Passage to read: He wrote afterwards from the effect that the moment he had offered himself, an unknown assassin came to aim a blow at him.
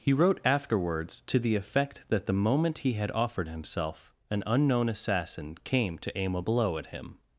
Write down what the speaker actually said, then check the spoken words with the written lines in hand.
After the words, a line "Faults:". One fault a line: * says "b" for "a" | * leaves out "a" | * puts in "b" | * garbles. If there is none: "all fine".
He wrote afterwards to the effect that the moment he had offered himself, an unknown assassin came to aim a blow at him.
Faults:
* says "to" for "from"